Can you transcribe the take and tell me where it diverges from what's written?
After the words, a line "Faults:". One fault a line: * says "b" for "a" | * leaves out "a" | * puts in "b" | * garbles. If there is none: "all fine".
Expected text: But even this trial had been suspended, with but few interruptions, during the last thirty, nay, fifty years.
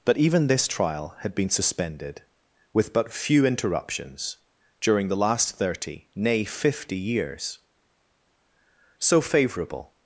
But even this trial had been suspended, with but few interruptions, during the last thirty, nay, fifty years. So favourable
Faults:
* puts in "So favourable"